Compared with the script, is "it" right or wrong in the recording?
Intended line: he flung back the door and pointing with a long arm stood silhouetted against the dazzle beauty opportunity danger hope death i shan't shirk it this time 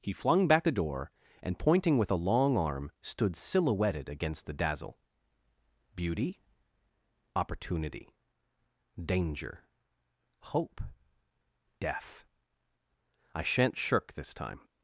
wrong